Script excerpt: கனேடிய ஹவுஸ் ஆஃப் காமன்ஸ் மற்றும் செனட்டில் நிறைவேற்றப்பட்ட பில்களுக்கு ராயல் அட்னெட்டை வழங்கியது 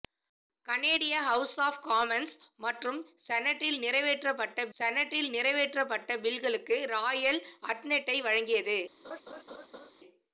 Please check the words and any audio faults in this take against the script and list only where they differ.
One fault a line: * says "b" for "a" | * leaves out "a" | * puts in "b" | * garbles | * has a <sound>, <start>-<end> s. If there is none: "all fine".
* puts in "செனட்டில் நிறைவேற்றப்பட்ட"
* has a laugh, 9.0-9.9 s